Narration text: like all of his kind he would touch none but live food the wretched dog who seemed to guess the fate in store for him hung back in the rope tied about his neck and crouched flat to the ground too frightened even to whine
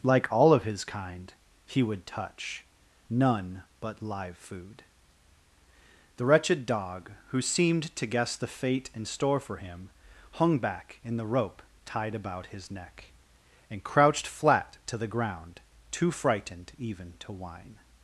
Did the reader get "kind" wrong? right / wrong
right